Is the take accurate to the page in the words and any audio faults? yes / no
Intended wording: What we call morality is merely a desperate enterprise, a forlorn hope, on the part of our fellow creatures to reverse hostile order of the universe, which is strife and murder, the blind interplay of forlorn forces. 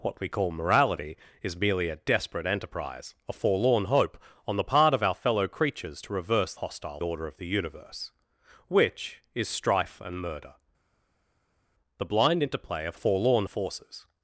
yes